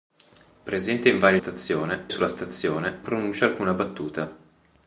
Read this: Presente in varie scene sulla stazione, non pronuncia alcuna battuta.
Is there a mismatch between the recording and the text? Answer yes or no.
yes